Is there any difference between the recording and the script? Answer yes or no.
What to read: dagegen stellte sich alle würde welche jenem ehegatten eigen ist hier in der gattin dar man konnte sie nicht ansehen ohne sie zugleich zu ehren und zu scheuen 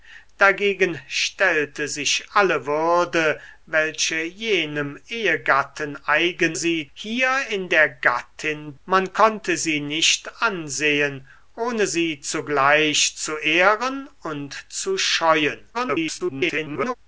yes